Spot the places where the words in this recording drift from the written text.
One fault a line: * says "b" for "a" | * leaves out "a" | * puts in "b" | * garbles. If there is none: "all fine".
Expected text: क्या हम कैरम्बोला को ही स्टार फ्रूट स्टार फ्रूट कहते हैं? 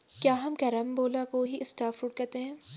* leaves out "स्टार फ्रूट"